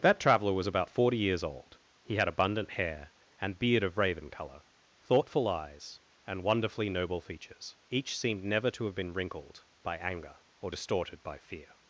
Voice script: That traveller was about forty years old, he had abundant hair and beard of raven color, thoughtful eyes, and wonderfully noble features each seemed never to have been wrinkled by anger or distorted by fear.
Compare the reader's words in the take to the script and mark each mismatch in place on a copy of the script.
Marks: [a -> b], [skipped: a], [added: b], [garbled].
That traveller was about forty years old, he had abundant hair and beard of raven color, thoughtful eyes, and wonderfully noble features each seemed never to have been wrinkled by anger or distorted by fear.